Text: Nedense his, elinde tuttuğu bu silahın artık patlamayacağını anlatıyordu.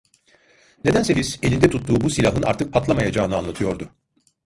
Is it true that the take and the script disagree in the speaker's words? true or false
false